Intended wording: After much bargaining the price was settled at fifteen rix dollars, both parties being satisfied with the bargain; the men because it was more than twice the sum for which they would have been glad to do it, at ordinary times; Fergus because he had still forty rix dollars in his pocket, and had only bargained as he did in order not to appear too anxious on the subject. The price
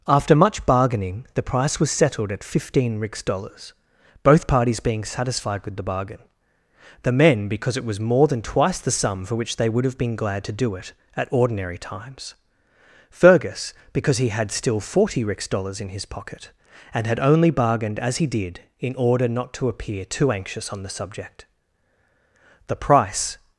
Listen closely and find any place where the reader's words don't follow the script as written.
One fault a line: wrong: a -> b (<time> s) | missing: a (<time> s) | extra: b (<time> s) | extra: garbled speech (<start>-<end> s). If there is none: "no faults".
no faults